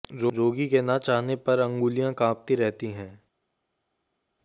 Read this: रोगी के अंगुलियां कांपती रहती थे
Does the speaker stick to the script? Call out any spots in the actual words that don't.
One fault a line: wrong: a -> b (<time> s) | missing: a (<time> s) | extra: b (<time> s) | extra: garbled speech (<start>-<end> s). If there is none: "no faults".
extra: न चाहने पर (0.8 s)
wrong: थे -> हैं (2.9 s)